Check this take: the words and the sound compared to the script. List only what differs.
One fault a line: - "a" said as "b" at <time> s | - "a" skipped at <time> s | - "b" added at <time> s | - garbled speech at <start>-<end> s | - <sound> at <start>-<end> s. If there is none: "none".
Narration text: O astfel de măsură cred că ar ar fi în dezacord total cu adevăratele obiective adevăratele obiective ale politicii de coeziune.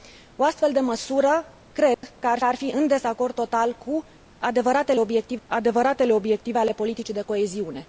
- dropout at 1.9-2.0 s